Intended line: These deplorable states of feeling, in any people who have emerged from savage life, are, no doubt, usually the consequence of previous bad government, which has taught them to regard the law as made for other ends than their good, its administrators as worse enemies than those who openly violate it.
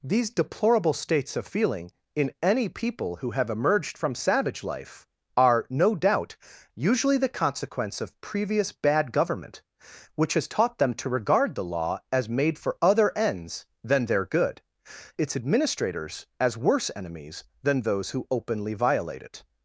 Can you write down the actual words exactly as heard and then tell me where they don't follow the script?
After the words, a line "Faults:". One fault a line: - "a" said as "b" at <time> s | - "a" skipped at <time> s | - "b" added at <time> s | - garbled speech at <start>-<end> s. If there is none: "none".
These deplorable states of feeling, in any people who have emerged from savage life, are, no doubt, usually the consequence of previous bad government, which has taught them to regard the law as made for other ends than their good, its administrators as worse enemies than those who openly violate it.
Faults:
none